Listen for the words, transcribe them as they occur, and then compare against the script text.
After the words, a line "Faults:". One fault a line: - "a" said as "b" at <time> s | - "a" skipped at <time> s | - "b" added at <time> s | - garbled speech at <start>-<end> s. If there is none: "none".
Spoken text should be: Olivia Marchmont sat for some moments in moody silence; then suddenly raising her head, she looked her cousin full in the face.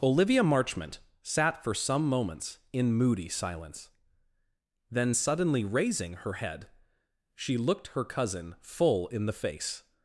Olivia Marchmont sat for some moments in moody silence; then suddenly raising her head, she looked her cousin full in the face.
Faults:
none